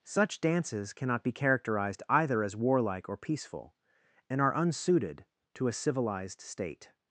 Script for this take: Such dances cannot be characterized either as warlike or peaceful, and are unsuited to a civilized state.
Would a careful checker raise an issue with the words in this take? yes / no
no